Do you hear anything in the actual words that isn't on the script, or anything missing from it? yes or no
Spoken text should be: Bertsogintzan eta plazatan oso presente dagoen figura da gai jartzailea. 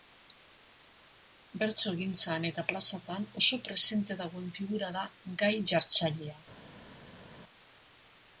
no